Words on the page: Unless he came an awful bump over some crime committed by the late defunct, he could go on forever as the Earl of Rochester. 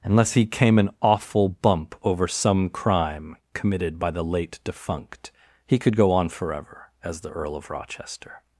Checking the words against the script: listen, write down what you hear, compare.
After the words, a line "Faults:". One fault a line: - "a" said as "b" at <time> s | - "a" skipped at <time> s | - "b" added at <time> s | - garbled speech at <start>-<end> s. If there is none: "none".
Unless he came an awful bump over some crime committed by the late defunct, he could go on forever as the Earl of Rochester.
Faults:
none